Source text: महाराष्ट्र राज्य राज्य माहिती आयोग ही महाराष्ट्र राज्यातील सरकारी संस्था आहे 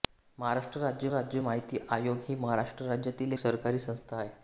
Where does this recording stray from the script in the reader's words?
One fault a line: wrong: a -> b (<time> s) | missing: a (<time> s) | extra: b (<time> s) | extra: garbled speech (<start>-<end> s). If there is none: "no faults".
no faults